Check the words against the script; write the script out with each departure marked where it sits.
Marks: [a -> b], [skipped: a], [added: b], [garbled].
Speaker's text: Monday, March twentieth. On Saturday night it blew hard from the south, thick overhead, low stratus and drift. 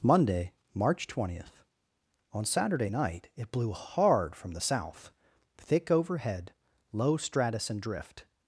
Monday, March twentieth. On Saturday night it blew hard from the south, thick overhead, low stratus and drift.